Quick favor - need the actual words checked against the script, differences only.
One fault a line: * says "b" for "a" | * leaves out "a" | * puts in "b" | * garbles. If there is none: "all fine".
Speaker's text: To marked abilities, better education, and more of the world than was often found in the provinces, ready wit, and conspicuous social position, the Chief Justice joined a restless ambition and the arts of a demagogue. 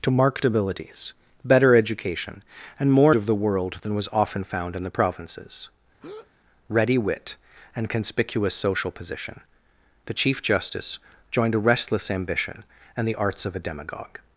all fine